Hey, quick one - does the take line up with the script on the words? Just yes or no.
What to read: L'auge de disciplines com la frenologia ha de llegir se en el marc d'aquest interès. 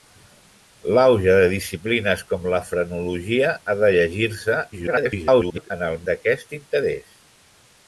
no